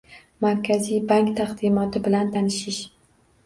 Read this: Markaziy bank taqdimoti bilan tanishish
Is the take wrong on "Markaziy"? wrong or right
right